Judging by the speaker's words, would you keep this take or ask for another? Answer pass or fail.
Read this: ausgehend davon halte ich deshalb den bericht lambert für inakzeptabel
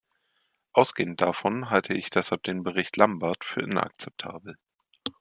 pass